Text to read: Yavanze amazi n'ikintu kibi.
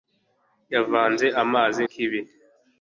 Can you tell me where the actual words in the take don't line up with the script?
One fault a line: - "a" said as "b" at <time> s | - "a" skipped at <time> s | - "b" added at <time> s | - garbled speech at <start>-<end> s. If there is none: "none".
- "n'ikintu" skipped at 1.8 s